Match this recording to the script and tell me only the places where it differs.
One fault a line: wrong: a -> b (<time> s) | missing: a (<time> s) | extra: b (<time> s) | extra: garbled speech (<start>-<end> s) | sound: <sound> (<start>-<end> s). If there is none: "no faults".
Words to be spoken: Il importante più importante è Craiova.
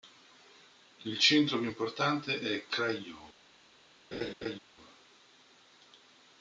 wrong: importante -> centro (1.2 s)
sound: laugh (4.1-4.6 s)